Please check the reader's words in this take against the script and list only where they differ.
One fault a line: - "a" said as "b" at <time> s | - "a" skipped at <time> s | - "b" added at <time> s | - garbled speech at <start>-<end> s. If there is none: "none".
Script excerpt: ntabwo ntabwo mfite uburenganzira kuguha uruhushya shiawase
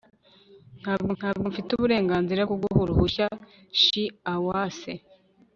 none